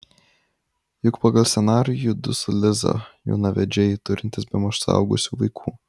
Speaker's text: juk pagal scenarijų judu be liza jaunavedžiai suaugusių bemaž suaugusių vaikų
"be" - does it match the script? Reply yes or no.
no